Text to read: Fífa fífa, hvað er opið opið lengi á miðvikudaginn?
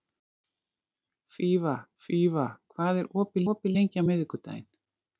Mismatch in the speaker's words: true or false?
false